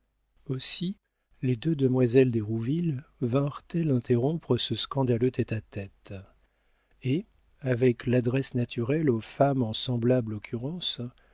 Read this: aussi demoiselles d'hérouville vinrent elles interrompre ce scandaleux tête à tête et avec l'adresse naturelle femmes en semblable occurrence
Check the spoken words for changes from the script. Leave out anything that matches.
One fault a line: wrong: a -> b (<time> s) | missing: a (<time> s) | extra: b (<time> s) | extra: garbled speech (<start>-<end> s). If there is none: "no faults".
extra: les deux (1.4 s)
extra: aux (9.1 s)